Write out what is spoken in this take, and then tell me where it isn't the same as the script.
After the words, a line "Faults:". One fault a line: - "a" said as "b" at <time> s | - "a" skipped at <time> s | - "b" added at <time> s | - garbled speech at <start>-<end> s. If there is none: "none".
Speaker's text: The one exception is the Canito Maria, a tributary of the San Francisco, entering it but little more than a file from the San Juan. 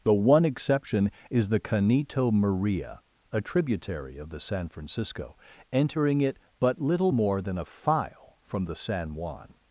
The one exception is the Canito Maria, a tributary of the San Francisco, entering it but little more than a file from the San Juan.
Faults:
none